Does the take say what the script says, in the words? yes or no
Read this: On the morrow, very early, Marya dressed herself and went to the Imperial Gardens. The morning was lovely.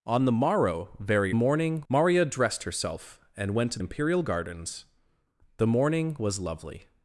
no